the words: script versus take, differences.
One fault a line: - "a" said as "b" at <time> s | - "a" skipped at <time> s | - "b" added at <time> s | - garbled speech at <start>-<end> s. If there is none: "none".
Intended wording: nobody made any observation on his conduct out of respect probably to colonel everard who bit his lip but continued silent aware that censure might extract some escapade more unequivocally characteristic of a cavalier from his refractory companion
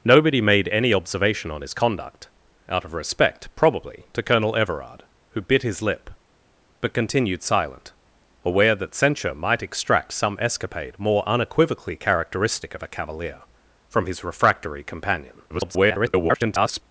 - garbled speech at 15.5-16.8 s